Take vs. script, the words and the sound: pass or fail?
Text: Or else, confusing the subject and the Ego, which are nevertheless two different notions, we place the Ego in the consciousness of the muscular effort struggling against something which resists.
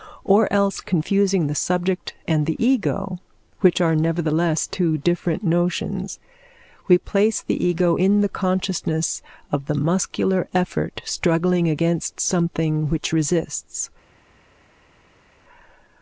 pass